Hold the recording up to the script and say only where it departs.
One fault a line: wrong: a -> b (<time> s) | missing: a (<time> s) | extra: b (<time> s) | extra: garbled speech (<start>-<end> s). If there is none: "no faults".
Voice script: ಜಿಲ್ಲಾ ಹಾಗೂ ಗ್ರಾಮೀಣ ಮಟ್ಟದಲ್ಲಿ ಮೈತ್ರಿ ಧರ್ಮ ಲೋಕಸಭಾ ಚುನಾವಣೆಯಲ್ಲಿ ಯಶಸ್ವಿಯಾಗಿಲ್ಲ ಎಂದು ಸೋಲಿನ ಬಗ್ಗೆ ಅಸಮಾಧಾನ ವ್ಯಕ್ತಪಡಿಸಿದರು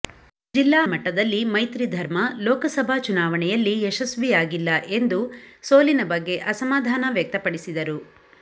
missing: ಹಾಗೂ ಗ್ರಾಮೀಣ (0.8 s)